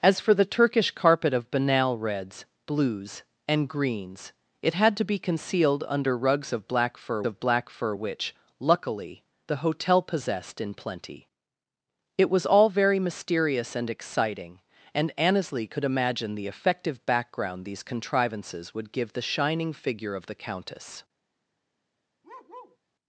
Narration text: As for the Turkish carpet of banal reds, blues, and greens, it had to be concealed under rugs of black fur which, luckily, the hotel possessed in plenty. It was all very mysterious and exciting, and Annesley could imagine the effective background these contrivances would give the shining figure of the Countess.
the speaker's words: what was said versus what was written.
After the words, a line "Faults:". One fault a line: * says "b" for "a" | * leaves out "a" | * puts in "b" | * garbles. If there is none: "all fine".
As for the Turkish carpet of banal reds, blues, and greens, it had to be concealed under rugs of black fur of black fur which, luckily, the hotel possessed in plenty. It was all very mysterious and exciting, and Annesley could imagine the effective background these contrivances would give the shining figure of the Countess.
Faults:
* puts in "of black fur"